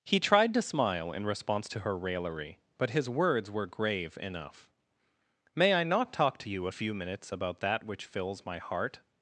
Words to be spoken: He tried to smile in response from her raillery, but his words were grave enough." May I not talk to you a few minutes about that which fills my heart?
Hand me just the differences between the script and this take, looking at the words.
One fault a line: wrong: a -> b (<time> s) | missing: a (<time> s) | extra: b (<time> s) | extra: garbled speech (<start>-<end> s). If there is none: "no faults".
wrong: from -> to (1.7 s)